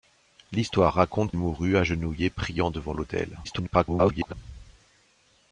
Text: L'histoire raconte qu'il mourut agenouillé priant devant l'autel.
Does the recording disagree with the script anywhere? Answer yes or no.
yes